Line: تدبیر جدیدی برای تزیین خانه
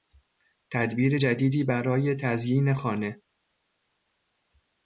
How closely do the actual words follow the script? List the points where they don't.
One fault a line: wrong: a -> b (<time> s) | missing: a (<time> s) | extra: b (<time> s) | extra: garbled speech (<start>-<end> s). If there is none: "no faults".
no faults